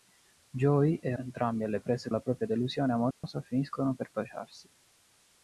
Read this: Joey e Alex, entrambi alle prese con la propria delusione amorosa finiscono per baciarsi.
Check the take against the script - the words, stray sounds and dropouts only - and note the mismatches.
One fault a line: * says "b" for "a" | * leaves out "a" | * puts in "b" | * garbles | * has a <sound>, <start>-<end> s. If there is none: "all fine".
* leaves out "Alex"
* leaves out "con"
* has a dropout, 3.1-3.2 s